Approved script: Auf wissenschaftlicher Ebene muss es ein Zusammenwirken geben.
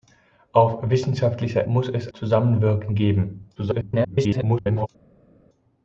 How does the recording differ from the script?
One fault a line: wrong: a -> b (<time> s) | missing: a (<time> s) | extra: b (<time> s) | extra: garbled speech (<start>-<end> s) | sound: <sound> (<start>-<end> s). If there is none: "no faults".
missing: Ebene (1.7 s)
missing: ein (2.1 s)
extra: garbled speech (3.6-4.9 s)